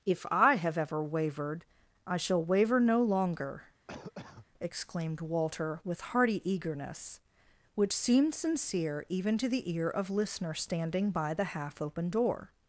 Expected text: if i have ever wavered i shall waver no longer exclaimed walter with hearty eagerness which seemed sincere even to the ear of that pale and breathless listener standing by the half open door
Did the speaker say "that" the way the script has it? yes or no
no